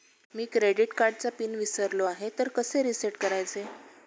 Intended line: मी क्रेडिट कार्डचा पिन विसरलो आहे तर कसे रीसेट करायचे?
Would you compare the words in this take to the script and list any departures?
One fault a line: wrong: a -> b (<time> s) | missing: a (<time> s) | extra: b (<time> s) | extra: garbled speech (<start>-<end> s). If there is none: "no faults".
no faults